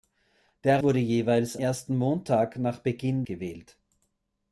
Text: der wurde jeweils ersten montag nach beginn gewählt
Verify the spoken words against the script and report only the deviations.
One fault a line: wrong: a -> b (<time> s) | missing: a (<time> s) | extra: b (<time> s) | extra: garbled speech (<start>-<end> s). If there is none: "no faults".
no faults